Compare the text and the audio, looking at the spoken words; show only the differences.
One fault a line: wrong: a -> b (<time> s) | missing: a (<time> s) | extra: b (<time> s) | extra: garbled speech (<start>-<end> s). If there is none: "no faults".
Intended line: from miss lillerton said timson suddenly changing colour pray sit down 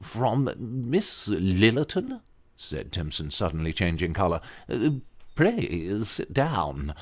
no faults